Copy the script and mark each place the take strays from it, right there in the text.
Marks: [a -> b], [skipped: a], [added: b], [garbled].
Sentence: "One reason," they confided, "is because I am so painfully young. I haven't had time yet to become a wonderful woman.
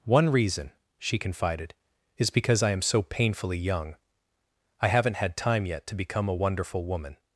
"One reason," [they -> she] confided, "is because I am so painfully young. I haven't had time yet to become a wonderful woman.